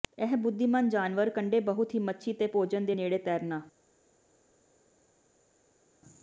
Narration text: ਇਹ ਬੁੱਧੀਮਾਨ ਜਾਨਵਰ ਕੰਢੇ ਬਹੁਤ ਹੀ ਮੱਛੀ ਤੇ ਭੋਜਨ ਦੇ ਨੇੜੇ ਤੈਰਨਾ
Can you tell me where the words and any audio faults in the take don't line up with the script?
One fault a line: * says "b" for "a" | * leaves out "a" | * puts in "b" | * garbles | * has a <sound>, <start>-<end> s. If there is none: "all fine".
all fine